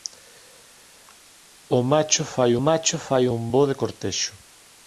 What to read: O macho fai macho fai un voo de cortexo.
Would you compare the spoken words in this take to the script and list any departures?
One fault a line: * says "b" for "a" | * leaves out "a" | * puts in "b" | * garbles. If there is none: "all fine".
all fine